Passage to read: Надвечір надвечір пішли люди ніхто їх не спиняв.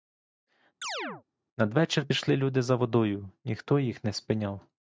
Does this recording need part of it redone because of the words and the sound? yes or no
yes